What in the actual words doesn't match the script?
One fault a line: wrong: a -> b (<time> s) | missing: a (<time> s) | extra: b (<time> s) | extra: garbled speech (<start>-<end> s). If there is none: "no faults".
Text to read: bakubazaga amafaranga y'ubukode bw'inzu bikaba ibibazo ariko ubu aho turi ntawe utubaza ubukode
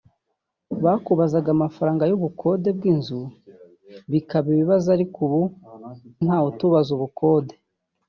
missing: aho turi (5.4 s)